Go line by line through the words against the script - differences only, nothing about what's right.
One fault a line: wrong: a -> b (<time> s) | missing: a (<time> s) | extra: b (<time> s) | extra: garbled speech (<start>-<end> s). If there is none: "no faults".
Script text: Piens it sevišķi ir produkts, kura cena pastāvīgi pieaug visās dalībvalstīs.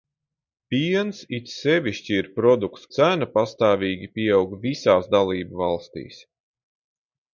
missing: kura (2.9 s)